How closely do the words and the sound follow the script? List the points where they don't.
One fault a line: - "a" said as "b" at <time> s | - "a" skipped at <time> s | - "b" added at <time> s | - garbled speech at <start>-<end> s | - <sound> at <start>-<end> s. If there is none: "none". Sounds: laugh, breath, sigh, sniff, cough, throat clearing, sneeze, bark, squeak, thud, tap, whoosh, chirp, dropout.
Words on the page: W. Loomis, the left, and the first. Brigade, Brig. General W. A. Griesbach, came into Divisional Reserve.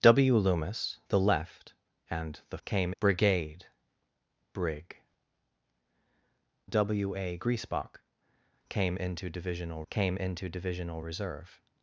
- "first" said as "came" at 2.7 s
- "General" skipped at 5.0 s
- "came into Divisional" added at 9.9 s